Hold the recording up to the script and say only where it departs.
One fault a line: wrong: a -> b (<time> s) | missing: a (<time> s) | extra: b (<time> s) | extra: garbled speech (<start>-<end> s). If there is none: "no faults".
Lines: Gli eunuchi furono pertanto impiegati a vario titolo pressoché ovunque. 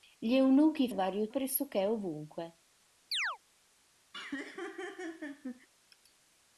missing: furono pertanto impiegati (0.9 s)
missing: titolo (1.3 s)